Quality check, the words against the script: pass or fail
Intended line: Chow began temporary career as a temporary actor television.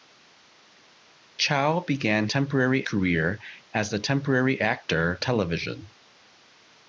pass